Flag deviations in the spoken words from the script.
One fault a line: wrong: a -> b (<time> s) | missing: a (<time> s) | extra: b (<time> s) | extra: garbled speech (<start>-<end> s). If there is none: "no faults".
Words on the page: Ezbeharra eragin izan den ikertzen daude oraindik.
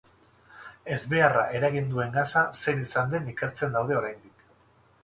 extra: duen gasa zein (1.9 s)